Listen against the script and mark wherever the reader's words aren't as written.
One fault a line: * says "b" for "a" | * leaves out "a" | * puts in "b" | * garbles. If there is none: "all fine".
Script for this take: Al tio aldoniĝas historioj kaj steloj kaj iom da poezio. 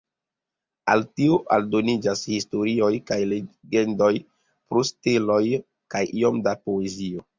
* puts in "legendoj pro"